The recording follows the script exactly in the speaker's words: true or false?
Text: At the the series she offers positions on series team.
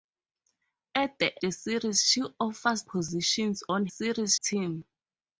true